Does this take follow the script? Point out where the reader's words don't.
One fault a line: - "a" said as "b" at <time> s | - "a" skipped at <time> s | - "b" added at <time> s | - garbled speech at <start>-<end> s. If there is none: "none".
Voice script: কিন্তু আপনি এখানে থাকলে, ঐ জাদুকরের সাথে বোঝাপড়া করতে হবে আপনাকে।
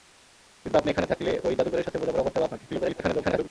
- garbled speech at 2.7-3.5 s